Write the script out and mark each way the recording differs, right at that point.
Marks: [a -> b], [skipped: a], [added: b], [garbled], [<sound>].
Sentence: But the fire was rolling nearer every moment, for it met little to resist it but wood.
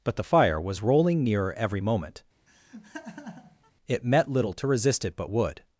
But the fire was rolling nearer every moment, [skipped: for] [laugh] it met little to resist it but wood.